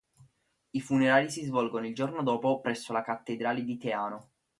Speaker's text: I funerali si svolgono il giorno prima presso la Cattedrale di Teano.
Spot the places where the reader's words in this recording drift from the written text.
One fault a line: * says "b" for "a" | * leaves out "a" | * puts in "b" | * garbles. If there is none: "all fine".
* says "dopo" for "prima"